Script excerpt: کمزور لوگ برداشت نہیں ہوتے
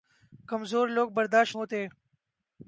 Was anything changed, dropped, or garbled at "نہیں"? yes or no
yes